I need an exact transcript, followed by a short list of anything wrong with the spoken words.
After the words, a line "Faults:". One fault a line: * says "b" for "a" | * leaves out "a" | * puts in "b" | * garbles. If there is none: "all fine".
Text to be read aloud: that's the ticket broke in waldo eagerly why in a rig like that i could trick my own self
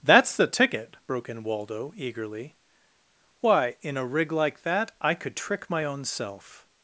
that's the ticket broke in waldo eagerly why in a rig like that i could trick my own self
Faults:
all fine